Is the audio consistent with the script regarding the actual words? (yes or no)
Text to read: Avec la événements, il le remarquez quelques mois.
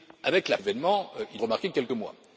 yes